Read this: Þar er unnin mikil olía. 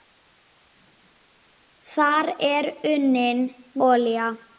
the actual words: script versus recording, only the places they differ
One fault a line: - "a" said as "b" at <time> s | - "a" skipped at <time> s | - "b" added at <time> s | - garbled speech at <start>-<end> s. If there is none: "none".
- "mikil" skipped at 3.4 s